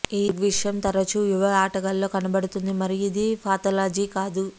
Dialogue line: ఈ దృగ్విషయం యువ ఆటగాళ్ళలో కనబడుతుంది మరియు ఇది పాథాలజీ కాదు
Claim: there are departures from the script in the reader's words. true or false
true